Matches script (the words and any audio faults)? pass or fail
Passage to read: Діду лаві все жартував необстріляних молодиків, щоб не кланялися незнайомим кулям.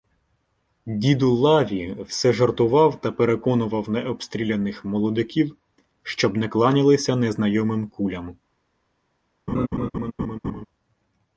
fail